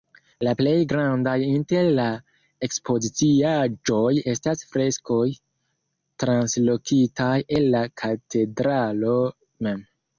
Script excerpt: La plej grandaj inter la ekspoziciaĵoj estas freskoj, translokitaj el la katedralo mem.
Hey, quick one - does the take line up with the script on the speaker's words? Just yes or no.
yes